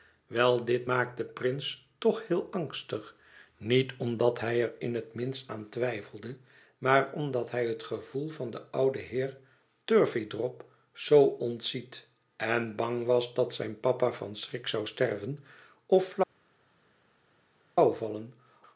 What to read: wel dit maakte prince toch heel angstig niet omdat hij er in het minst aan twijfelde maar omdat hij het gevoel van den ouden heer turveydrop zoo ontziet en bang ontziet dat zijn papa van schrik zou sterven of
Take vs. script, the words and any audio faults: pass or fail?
fail